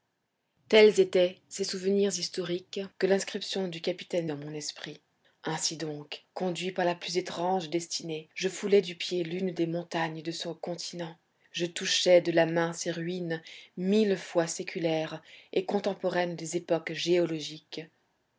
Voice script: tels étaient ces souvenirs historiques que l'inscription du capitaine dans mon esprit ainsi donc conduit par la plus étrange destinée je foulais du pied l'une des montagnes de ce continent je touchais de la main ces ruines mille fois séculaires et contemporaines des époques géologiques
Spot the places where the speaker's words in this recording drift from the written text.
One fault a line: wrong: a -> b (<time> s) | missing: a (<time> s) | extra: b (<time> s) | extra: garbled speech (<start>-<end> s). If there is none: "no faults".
no faults